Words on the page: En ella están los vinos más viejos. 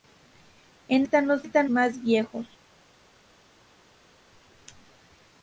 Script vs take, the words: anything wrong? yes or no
yes